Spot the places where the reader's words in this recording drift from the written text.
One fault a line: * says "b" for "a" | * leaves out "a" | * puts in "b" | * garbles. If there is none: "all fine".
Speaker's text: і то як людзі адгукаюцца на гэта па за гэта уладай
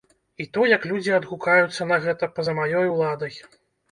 * says "маёй" for "гэта"